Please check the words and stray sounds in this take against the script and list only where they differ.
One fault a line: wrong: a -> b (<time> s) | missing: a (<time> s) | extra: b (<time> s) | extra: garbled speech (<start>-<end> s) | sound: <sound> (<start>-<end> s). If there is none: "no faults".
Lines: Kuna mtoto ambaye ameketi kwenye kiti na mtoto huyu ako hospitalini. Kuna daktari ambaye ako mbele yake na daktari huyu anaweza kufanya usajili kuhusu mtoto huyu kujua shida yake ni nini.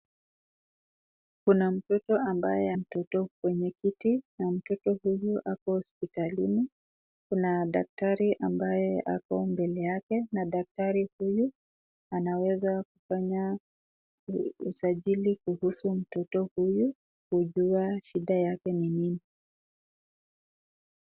wrong: ameketi -> mtoto (2.7 s)